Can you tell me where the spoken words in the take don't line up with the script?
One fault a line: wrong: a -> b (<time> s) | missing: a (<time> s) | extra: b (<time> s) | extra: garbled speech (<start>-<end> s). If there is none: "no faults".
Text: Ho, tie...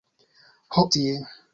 no faults